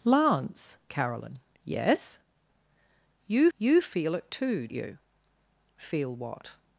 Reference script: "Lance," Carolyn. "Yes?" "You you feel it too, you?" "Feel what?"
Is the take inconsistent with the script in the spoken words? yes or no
no